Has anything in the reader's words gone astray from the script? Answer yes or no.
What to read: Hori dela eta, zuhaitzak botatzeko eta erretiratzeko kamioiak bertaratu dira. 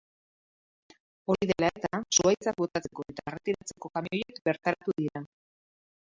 no